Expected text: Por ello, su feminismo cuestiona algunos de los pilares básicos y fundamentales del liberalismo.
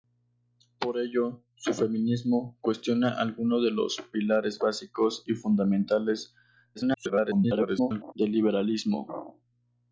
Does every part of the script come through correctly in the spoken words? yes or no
no